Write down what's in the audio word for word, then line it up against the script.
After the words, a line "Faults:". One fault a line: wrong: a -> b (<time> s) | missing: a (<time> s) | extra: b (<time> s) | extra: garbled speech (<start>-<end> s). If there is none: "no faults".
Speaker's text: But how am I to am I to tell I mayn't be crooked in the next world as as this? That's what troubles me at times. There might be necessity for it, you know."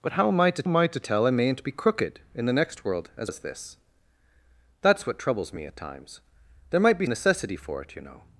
But how am I to am I to tell I mayn't be crooked in the next world as as this? That's what troubles me at times. There might be necessity for it, you know."
Faults:
no faults